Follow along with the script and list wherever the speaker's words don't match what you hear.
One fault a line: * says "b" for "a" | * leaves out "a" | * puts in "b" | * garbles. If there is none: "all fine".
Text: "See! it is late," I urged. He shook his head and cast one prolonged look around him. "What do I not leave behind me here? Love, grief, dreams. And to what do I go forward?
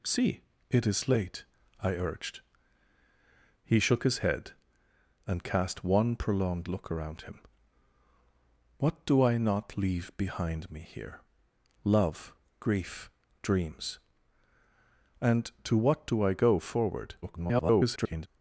* garbles